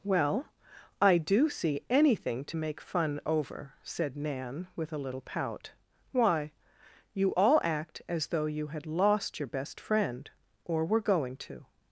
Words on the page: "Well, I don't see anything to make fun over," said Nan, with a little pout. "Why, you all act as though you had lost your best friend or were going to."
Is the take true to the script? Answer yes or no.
no